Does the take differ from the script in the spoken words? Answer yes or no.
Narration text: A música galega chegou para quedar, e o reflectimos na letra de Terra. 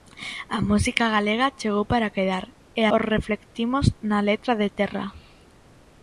no